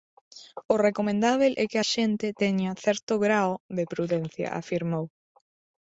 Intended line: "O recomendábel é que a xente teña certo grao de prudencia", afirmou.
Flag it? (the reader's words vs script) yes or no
no